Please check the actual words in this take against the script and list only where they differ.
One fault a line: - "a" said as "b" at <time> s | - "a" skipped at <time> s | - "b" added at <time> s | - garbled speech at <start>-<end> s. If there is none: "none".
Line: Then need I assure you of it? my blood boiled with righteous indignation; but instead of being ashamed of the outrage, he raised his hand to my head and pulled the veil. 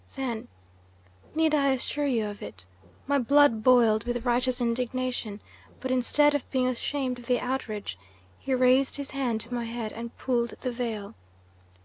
none